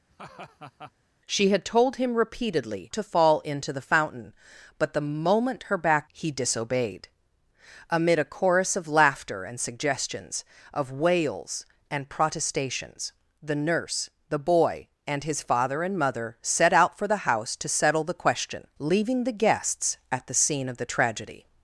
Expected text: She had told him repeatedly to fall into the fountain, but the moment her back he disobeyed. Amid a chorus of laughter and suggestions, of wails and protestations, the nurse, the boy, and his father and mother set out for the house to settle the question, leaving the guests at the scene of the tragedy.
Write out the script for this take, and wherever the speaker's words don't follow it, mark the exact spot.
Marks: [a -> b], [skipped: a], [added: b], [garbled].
She had told him repeatedly to fall into the fountain, but the moment her back he disobeyed. Amid a chorus of laughter and suggestions, of wails and protestations, the nurse, the boy, and his father and mother set out for the house to settle the question, leaving the guests at the scene of the tragedy.